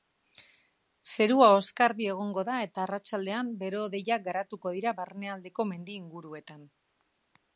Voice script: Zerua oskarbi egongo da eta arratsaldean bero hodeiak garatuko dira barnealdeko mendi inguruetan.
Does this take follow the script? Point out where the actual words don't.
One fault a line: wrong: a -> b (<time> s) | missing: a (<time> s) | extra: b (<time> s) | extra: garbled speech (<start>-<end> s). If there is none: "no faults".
no faults